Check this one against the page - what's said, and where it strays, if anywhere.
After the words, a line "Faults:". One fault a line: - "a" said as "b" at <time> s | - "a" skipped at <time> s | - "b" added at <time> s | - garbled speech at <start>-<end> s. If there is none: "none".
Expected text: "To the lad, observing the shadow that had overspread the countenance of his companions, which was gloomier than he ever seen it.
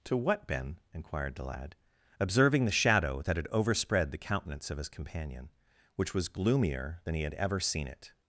"To what, Ben?" inquired the lad, observing the shadow that had overspread the countenance of his companion, which was gloomier than he had ever seen it.
Faults:
- "what Ben inquired" added at 0.2 s
- "companions" said as "companion" at 4.9 s
- "had" added at 7.2 s